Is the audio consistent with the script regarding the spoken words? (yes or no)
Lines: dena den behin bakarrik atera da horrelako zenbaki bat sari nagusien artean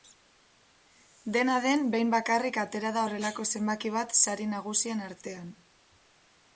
yes